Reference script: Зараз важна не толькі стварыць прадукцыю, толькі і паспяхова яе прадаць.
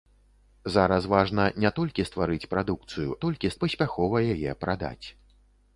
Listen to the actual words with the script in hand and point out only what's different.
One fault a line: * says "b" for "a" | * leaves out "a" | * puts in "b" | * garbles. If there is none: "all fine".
all fine